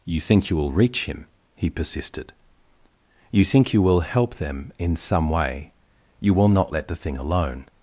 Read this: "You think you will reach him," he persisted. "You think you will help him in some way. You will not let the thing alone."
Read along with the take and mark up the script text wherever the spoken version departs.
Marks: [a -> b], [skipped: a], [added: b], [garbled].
"You think you will reach him," he persisted. "You think you will help [him -> them] in some way. You will not let the thing alone."